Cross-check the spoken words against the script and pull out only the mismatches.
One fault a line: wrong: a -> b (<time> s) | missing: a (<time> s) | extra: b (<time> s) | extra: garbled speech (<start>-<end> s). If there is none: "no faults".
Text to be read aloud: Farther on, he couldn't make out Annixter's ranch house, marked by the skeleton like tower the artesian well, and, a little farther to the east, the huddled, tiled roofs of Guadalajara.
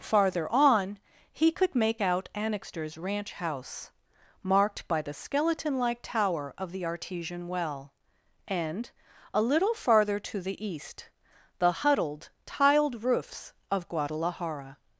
wrong: couldn't -> could (1.5 s)
extra: of (6.6 s)